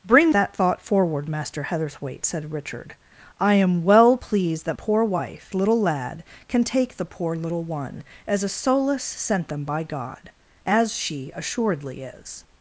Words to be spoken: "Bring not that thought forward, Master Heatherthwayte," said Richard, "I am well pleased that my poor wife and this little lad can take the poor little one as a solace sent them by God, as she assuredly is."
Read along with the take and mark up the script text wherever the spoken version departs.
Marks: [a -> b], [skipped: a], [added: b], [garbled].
"Bring [skipped: not] that thought forward, Master Heatherthwayte," said Richard, "I am well pleased that [skipped: my] poor wife [skipped: and this] little lad can take the poor little one as a solace sent them by God, as she assuredly is."